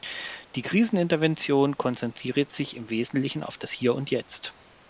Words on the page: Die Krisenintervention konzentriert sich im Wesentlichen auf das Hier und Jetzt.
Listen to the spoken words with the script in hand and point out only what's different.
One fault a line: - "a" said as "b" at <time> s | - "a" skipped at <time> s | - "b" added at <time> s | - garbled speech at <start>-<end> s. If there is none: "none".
none